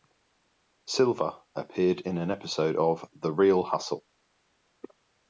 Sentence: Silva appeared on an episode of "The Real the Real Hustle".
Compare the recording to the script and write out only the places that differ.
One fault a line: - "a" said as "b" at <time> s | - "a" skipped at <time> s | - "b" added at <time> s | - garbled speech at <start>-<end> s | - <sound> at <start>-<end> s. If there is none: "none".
- "on" said as "in" at 2.0 s
- "the Real" skipped at 3.6 s